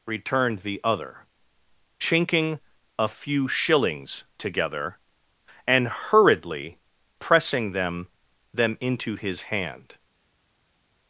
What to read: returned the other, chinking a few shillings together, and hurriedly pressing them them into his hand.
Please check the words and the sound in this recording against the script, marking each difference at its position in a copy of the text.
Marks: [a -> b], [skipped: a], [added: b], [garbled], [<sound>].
returned the other, chinking a few shillings together, and hurriedly pressing them them into his hand.